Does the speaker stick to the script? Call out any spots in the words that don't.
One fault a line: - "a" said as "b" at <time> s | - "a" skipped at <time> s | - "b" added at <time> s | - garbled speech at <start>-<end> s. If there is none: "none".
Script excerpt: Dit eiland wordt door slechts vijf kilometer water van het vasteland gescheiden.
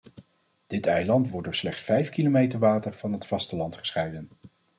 none